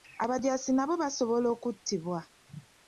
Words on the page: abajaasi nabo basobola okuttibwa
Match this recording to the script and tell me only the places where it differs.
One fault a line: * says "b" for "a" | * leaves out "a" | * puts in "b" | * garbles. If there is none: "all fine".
all fine